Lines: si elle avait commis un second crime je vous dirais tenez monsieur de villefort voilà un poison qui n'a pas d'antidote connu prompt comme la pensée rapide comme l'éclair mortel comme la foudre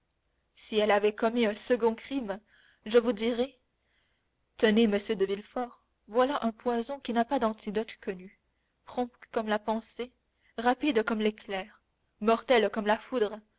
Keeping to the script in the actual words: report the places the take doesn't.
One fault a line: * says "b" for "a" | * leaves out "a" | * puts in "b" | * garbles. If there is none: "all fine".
all fine